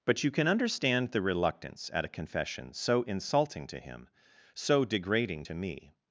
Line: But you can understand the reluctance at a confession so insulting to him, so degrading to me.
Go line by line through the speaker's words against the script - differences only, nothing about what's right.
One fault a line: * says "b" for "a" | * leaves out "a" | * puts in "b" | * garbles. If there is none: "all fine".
all fine